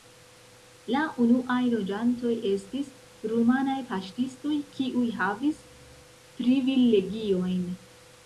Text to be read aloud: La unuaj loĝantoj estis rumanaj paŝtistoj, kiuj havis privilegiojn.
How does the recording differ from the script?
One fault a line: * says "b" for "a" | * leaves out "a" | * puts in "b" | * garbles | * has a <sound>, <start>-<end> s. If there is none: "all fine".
all fine